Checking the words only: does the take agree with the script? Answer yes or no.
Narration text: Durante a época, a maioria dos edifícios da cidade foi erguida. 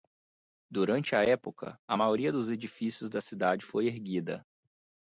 yes